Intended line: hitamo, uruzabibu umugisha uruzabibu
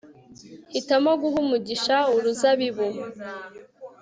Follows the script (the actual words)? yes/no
no